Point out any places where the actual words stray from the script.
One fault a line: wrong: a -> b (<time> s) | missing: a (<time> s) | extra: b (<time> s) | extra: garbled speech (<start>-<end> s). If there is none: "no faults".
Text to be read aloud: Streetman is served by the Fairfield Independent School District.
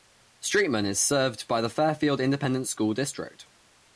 no faults